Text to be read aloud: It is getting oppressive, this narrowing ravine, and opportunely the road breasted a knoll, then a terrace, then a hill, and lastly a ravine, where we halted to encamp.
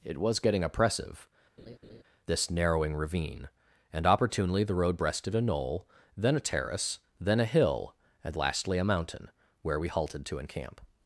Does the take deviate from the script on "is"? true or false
true